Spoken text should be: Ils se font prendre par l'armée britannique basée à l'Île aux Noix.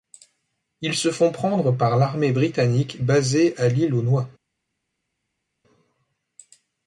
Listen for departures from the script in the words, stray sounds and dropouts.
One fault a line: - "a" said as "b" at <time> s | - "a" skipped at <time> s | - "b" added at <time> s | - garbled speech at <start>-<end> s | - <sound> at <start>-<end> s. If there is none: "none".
none